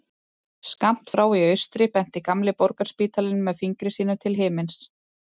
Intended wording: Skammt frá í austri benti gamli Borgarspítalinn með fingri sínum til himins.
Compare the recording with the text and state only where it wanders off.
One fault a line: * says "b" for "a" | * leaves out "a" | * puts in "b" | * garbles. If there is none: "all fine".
all fine